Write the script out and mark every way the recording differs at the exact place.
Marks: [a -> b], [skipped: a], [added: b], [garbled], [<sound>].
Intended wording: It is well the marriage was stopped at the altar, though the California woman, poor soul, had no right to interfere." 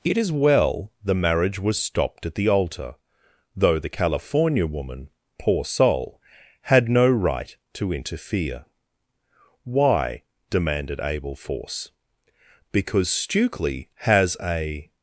It is well the marriage was stopped at the altar, though the California woman, poor soul, had no right to interfere." [added: Why demanded Abel Force Because Stukely has a]